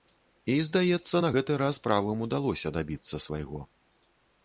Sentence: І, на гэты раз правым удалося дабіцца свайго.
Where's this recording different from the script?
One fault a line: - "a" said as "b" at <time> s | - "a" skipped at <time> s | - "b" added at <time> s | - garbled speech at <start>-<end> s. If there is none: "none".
- "здаецца" added at 0.7 s